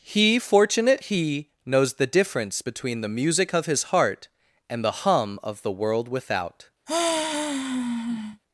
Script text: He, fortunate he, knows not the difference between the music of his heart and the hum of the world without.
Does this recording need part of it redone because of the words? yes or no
yes